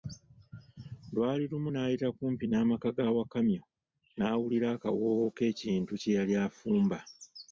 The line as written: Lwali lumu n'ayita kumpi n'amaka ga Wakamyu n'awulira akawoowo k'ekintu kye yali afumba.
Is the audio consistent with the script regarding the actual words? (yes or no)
yes